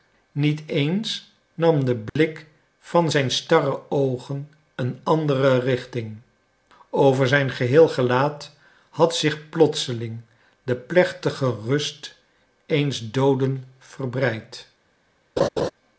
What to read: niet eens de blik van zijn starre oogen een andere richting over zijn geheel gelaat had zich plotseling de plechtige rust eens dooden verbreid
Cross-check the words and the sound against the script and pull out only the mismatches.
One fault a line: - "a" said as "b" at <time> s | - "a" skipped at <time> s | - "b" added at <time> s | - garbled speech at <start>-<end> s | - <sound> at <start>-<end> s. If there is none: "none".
- "nam" added at 1.5 s
- dropout at 2.1-2.2 s
- laugh at 15.4-15.7 s